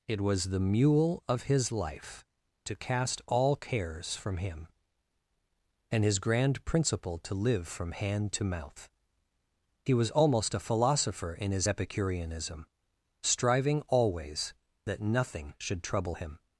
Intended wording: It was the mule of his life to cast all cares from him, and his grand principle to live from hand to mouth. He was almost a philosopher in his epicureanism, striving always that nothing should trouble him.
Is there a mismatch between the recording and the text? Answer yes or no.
no